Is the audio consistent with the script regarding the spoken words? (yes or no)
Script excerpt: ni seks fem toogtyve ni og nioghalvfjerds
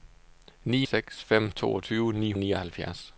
yes